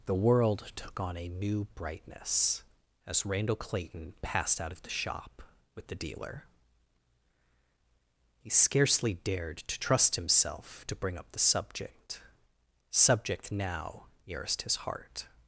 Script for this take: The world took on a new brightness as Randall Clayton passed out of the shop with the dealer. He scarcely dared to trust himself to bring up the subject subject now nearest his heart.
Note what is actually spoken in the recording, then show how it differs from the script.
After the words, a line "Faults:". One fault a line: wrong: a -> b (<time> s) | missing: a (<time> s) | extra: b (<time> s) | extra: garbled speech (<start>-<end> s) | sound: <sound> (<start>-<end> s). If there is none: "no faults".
The world took on a new brightness as Randall Clayton passed out of the shop with the dealer. He scarcely dared to trust himself to bring up the subject subject now nearest his heart.
Faults:
no faults